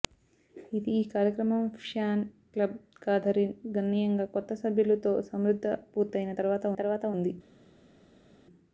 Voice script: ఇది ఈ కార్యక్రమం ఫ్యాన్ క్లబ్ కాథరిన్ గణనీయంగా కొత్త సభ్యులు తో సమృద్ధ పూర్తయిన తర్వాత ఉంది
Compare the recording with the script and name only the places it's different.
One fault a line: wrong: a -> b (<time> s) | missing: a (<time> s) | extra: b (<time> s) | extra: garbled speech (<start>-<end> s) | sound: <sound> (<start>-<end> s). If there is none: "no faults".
extra: తర్వాత (6.8 s)